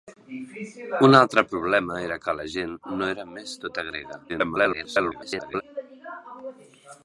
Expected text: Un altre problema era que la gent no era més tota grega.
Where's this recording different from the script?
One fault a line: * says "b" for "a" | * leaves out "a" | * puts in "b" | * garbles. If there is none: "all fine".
* garbles